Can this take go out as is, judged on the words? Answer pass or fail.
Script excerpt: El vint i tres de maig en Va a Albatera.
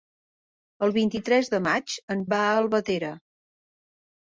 pass